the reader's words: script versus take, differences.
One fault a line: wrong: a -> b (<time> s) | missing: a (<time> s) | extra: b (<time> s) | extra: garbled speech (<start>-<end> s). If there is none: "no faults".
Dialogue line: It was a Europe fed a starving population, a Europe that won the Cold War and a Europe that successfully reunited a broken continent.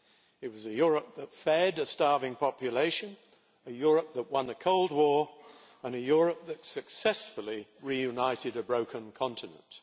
extra: that (1.1 s)